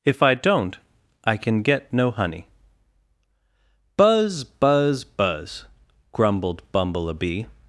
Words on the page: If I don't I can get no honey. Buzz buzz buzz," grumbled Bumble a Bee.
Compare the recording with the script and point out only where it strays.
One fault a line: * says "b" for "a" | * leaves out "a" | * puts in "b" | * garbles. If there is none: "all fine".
all fine